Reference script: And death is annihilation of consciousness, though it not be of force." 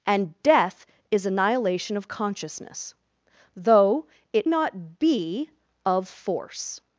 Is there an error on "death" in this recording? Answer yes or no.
no